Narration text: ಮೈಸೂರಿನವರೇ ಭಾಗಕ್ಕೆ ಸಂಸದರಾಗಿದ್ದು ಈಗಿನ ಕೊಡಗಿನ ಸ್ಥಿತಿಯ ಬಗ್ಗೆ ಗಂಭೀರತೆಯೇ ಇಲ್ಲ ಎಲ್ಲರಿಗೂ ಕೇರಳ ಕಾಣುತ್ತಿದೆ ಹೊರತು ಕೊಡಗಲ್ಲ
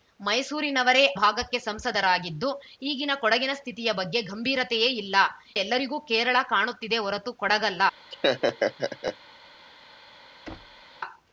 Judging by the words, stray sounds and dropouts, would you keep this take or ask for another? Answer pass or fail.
fail